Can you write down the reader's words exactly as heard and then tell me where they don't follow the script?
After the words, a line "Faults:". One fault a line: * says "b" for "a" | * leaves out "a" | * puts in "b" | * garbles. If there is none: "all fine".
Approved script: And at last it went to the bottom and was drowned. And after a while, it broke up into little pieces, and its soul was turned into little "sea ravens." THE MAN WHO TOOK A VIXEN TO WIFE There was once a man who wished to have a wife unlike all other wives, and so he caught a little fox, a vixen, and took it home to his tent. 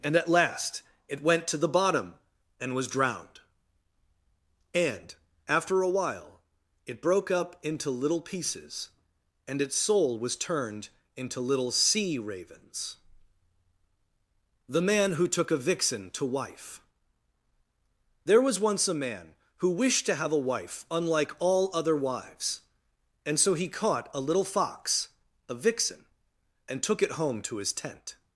And at last it went to the bottom and was drowned. And after a while, it broke up into little pieces, and its soul was turned into little "sea ravens." THE MAN WHO TOOK A VIXEN TO WIFE There was once a man who wished to have a wife unlike all other wives, and so he caught a little fox, a vixen, and took it home to his tent.
Faults:
all fine